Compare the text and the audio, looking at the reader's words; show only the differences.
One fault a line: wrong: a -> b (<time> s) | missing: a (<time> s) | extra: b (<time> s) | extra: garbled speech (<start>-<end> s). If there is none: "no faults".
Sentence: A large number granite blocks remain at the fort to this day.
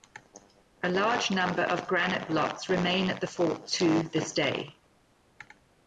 extra: of (1.6 s)